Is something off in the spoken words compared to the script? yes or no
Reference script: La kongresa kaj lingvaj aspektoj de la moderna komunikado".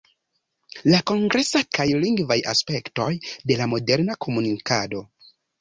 no